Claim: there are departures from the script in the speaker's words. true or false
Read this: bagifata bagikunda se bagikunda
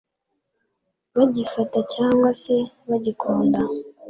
true